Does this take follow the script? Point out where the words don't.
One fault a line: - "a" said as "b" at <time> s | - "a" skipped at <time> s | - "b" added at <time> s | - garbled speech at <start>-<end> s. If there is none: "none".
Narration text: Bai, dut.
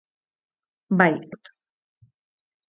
none